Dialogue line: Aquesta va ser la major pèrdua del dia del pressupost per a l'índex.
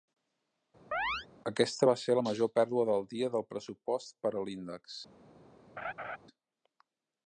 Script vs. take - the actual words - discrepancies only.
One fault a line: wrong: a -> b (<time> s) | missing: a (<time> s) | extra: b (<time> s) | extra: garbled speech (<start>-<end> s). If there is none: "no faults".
no faults